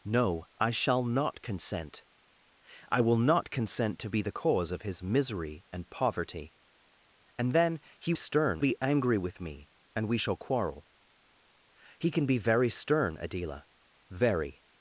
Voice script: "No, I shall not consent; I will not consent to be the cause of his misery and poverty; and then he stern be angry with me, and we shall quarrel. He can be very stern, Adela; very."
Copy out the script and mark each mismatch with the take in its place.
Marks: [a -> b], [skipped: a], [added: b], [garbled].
"No, I shall not consent; I will not consent to be the cause of his misery and poverty; and then he stern be angry with me, and we shall quarrel. He can be very stern, Adela; very."